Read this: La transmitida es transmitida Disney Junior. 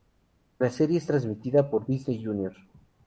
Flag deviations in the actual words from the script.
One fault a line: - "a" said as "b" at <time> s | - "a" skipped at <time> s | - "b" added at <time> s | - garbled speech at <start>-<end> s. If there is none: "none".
- "transmitida" said as "serie" at 0.7 s
- "por" added at 1.7 s